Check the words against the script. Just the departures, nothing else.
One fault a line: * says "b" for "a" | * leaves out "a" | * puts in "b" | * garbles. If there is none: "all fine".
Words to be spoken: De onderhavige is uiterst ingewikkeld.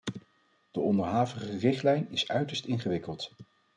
* puts in "richtlijn"